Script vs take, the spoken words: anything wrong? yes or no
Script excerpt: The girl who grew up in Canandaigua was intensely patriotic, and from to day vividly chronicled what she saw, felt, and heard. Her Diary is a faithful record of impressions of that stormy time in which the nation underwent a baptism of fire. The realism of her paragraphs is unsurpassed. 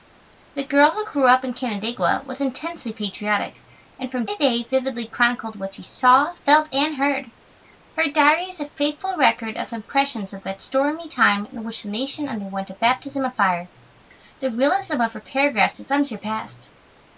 no